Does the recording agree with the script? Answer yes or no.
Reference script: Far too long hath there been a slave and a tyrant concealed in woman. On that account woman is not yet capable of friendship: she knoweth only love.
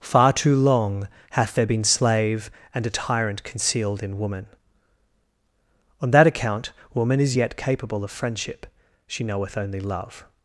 no